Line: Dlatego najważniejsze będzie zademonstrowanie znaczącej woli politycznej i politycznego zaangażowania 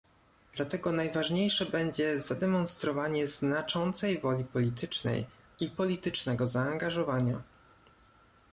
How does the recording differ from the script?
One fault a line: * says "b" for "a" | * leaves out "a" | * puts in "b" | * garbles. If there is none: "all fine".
all fine